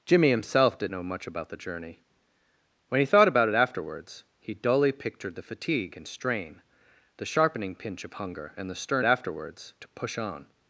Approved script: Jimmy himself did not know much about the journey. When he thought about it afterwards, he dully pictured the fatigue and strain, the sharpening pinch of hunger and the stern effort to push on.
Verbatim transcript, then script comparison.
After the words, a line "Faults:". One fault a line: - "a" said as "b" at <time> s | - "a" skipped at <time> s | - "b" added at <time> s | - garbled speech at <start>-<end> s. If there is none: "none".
Jimmy himself did know much about the journey. When he thought about it afterwards, he dully pictured the fatigue and strain, the sharpening pinch of hunger and the stern afterwards to push on.
Faults:
- "not" skipped at 0.9 s
- "effort" said as "afterwards" at 9.0 s